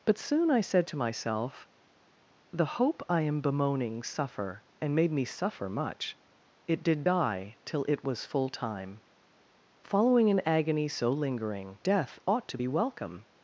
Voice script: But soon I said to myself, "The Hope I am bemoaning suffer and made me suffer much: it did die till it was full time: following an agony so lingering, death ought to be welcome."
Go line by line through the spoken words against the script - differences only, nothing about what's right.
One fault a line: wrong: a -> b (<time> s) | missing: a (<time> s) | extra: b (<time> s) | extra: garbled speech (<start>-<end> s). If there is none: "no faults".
no faults